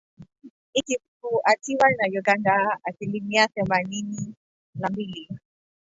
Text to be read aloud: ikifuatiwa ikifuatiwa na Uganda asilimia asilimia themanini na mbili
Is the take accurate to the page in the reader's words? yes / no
no